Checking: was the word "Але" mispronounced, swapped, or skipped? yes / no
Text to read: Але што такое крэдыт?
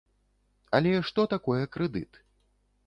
no